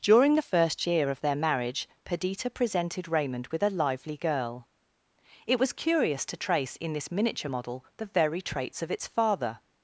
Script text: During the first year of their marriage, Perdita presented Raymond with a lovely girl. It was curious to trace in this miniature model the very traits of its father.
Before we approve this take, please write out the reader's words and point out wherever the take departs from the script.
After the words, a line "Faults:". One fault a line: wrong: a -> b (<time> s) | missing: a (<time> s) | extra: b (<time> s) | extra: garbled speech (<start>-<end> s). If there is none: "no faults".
During the first year of their marriage, Perdita presented Raymond with a lively girl. It was curious to trace in this miniature model the very traits of its father.
Faults:
wrong: lovely -> lively (3.7 s)